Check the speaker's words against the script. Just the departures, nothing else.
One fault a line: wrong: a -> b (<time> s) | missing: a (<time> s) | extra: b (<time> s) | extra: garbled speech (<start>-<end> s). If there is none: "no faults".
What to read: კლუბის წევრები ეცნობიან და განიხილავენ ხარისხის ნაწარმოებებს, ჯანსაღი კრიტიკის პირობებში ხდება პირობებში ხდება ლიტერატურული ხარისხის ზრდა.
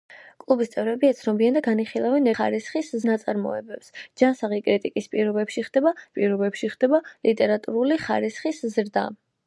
no faults